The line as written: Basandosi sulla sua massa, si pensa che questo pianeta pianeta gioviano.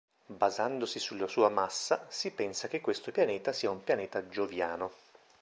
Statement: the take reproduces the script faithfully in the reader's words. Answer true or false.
false